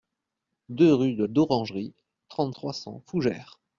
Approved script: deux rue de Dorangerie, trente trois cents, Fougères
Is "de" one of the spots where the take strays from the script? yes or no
no